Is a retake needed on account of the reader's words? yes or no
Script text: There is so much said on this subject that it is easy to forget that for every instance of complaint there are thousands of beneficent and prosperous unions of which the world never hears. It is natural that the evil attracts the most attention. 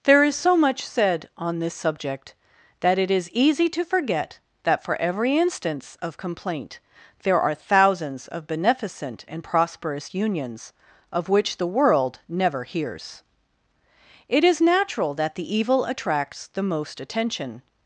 no